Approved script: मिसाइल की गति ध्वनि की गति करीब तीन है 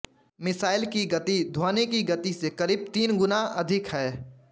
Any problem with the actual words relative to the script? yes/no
yes